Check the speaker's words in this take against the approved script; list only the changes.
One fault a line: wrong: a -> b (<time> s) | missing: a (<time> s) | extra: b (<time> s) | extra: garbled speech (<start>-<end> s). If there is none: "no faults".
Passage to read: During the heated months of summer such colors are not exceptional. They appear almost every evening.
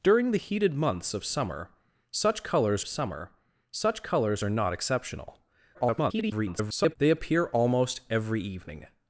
extra: summer such colors (2.8 s)
extra: garbled speech (5.7-7.0 s)